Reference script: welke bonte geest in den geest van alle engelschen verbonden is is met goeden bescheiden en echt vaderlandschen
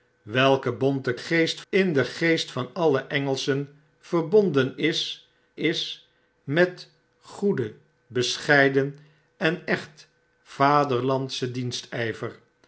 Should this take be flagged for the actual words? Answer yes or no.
no